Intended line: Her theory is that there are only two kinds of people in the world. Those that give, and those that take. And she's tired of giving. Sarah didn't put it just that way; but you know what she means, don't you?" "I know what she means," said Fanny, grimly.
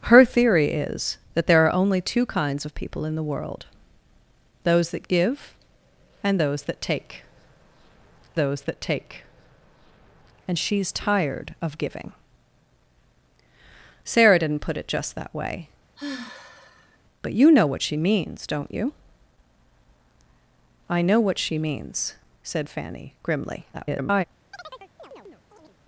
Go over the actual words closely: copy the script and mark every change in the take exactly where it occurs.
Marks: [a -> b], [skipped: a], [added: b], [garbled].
Her theory is that there are only two kinds of people in the world. Those that give, and those that take. [added: those that take] And she's tired of giving. Sarah didn't put it just that way; but you know what she means, don't you?" "I know what she means," said Fanny, grimly. [garbled]